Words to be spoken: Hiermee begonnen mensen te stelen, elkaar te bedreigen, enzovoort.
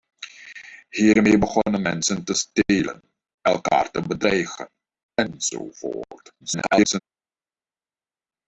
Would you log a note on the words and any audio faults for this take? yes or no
yes